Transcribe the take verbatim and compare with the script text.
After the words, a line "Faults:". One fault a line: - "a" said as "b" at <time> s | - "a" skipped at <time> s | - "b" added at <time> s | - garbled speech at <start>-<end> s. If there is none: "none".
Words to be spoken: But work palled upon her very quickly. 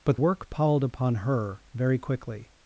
But work palled upon her very quickly.
Faults:
none